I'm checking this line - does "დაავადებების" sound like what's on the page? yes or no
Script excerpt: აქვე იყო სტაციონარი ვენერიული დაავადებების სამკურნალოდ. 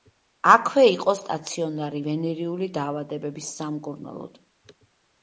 yes